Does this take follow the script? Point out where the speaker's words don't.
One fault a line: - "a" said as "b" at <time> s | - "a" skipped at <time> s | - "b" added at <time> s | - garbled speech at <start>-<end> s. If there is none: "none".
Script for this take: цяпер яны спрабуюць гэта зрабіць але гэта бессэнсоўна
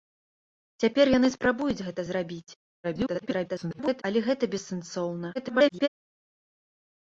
- garbled speech at 2.8-4.0 s
- garbled speech at 5.3-5.9 s